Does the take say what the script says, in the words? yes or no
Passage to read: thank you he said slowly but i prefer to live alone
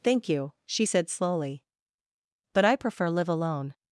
no